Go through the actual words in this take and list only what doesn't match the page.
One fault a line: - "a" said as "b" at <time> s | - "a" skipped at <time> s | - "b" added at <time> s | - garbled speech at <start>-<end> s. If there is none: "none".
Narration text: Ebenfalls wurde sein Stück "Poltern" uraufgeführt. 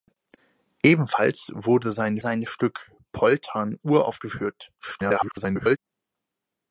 - "sein" added at 2.2 s
- garbled speech at 4.8-5.8 s